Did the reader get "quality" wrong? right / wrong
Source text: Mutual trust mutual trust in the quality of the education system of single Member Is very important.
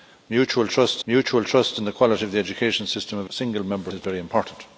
right